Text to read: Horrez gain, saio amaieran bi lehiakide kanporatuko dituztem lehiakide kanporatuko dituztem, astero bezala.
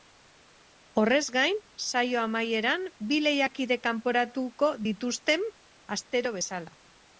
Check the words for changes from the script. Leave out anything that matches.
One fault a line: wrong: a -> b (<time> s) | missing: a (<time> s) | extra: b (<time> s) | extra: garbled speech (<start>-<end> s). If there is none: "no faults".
missing: lehiakide kanporatuko dituztem (5.5 s)